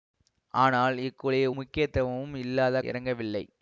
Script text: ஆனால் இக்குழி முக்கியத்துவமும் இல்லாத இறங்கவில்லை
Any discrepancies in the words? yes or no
no